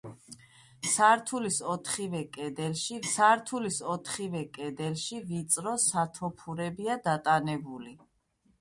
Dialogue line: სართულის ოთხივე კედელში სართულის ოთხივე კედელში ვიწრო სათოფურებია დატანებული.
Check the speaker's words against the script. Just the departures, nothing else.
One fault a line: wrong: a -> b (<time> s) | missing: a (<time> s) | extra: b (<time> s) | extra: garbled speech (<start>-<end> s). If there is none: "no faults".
no faults